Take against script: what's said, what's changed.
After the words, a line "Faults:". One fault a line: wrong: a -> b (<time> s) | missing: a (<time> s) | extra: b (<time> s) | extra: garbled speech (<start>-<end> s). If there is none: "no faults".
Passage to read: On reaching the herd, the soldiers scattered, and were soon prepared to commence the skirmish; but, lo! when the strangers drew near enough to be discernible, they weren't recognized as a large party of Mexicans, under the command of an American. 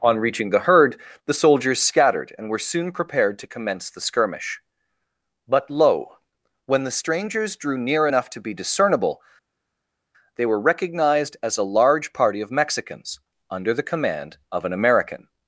On reaching the herd, the soldiers scattered, and were soon prepared to commence the skirmish; but, lo! when the strangers drew near enough to be discernible, they were recognized as a large party of Mexicans, under the command of an American.
Faults:
wrong: weren't -> were (10.5 s)